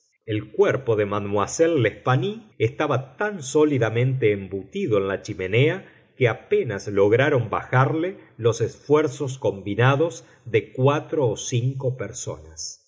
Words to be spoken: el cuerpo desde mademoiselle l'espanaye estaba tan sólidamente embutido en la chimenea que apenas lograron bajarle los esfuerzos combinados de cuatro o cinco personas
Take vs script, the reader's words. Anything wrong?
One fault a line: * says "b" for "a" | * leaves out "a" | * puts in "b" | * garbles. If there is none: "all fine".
* says "de" for "desde"